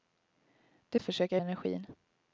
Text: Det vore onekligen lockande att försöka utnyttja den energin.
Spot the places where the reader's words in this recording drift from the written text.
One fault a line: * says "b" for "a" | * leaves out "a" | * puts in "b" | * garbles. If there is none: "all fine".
* leaves out "vore onekligen lockande"
* leaves out "utnyttja den"